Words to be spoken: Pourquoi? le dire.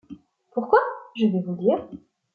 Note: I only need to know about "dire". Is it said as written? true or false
true